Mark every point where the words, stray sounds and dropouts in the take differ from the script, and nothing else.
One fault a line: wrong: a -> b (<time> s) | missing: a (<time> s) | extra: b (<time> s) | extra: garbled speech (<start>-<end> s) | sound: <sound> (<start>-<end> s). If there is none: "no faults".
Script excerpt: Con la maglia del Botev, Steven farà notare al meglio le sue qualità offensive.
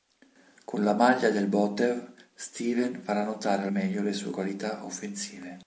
missing: al (3.7 s)